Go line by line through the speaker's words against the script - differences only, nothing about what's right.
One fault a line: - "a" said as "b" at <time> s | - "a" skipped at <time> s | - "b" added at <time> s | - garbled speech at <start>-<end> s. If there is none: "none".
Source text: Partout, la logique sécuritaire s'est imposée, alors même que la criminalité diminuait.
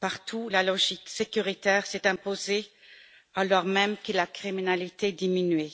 none